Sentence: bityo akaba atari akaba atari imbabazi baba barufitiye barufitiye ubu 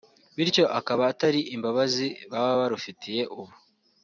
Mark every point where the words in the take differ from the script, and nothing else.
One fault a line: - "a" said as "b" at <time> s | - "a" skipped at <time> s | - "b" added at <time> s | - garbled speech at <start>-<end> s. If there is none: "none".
- "akaba atari" skipped at 1.4 s
- "barufitiye" skipped at 3.2 s